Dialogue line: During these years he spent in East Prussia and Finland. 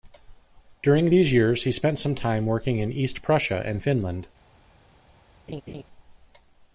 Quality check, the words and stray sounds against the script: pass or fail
fail